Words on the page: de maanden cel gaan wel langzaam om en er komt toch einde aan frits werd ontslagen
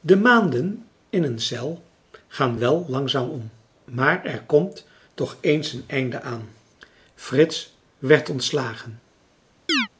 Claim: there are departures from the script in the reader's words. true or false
true